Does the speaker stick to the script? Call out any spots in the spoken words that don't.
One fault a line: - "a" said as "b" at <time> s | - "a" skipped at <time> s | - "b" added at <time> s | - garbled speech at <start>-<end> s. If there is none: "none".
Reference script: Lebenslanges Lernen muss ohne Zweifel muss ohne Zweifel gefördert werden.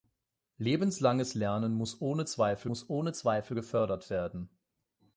none